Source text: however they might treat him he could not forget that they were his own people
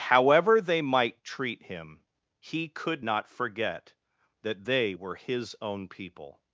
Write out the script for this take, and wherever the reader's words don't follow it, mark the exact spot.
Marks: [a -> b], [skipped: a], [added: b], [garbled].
however they might treat him he could not forget that they were his own people